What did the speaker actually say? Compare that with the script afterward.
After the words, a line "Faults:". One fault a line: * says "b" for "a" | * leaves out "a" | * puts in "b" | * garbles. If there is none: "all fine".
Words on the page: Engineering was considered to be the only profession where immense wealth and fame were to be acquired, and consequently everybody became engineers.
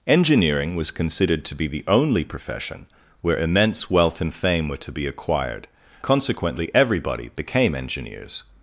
Engineering was considered to be the only profession where immense wealth and fame were to be acquired, consequently everybody became engineers.
Faults:
* leaves out "and"